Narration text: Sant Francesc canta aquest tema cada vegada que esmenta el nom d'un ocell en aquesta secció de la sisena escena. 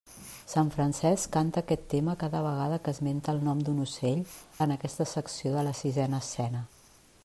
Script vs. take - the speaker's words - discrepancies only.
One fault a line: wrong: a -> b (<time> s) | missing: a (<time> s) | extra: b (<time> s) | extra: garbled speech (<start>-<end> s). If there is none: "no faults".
no faults